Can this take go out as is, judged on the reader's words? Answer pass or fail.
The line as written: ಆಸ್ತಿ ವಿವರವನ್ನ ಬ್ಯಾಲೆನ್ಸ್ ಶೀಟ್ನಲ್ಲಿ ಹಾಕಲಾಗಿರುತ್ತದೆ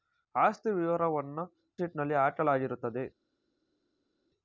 fail